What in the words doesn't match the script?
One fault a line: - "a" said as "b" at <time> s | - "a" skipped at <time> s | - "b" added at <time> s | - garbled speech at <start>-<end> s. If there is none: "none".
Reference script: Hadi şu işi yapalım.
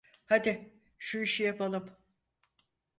none